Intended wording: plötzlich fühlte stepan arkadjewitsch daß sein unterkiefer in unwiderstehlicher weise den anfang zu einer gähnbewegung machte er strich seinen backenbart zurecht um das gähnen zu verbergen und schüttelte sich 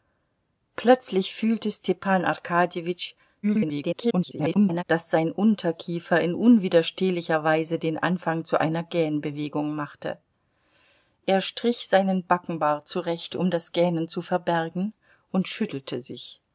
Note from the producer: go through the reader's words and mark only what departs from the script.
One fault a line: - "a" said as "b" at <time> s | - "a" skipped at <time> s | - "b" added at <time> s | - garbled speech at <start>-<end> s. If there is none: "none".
- garbled speech at 3.4-4.8 s